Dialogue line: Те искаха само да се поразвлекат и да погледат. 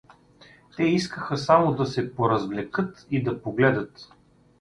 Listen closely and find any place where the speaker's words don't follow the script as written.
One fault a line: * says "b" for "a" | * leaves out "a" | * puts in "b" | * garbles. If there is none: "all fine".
all fine